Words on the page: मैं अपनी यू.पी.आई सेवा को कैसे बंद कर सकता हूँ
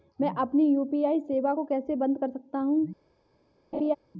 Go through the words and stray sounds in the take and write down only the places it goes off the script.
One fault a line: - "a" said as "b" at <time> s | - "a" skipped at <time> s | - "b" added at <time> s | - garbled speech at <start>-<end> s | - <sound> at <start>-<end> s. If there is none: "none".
- laugh at 3.7-4.0 s